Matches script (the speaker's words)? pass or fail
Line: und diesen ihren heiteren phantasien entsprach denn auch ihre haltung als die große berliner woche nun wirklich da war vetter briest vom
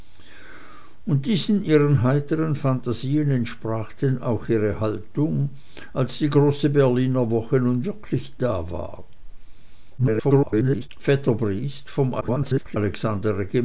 fail